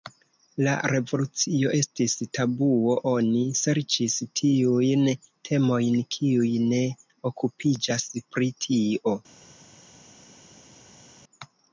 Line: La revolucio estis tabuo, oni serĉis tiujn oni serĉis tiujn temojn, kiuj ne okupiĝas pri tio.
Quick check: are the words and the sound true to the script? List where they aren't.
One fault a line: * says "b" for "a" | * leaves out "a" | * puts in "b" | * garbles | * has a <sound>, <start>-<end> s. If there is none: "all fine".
* leaves out "oni serĉis tiujn"